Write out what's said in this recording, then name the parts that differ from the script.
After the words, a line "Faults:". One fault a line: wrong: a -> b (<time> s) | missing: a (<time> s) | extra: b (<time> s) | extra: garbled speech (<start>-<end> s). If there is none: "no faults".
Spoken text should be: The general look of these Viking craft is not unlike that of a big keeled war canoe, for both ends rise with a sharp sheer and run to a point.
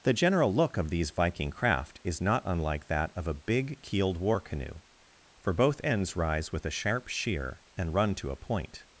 The general look of these Viking craft is not unlike that of a big keeled war canoe, for both ends rise with a sharp sheer and run to a point.
Faults:
no faults